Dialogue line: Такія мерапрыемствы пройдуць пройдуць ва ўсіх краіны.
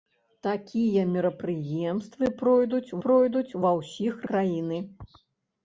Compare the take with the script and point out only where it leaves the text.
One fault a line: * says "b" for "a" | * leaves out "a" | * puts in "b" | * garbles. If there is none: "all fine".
all fine